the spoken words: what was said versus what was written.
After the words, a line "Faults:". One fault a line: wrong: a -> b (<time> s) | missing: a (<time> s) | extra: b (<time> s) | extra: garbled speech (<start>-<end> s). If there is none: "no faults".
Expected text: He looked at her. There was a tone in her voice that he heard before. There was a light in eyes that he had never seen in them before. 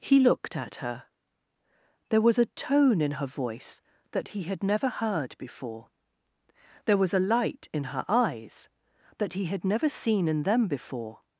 He looked at her. There was a tone in her voice that he had never heard before. There was a light in her eyes that he had never seen in them before.
Faults:
extra: had never (4.4 s)
extra: her (7.9 s)